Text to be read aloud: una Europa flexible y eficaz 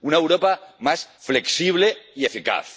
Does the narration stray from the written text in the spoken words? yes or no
yes